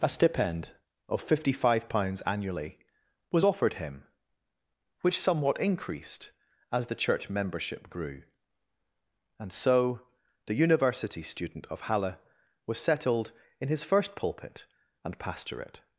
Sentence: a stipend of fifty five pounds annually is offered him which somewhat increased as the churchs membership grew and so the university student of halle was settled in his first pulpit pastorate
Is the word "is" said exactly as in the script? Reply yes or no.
no